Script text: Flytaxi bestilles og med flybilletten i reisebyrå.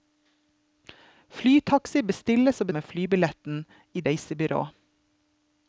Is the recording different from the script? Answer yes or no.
no